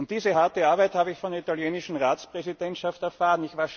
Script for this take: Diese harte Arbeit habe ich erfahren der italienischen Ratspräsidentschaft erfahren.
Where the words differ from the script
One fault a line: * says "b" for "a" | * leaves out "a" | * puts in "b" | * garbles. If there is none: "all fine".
* says "von" for "erfahren"